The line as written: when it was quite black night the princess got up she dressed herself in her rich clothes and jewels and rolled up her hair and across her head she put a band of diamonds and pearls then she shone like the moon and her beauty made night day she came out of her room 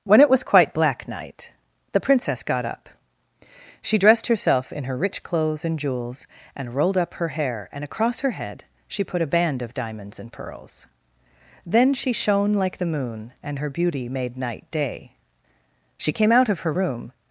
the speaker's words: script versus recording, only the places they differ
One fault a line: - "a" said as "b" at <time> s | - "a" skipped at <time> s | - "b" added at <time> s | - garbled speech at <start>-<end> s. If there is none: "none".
none